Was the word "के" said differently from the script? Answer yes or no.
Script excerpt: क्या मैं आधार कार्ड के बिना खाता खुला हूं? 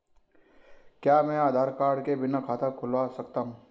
no